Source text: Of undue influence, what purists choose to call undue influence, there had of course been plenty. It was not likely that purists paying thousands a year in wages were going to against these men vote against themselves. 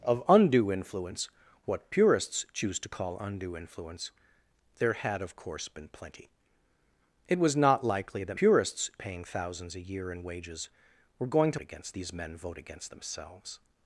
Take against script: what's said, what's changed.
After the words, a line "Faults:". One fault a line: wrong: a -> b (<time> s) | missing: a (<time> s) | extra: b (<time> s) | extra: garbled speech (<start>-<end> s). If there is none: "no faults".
Of undue influence, what purists choose to call undue influence, there had of course been plenty. It was not likely that purists paying thousands a year in wages were going to against these men vote against themselves.
Faults:
no faults